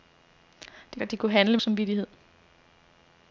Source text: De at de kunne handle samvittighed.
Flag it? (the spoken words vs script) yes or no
no